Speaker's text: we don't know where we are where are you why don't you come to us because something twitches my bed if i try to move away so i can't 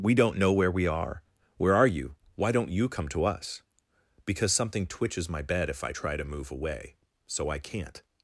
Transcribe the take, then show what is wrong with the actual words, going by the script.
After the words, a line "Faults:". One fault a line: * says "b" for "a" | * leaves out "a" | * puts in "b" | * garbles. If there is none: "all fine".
we don't know where we are where are you why don't you come to us because something twitches my bed if i try to move away so i can't
Faults:
all fine